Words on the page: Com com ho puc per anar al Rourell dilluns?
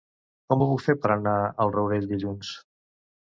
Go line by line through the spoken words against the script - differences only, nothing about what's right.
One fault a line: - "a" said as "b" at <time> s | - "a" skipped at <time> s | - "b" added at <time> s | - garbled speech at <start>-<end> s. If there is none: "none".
- "com" skipped at 0.6 s
- "fer" added at 0.8 s